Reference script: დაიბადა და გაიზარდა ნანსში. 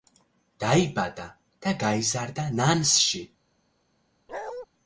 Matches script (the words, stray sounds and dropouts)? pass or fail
fail